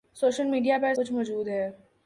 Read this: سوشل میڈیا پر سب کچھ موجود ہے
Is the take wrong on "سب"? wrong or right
wrong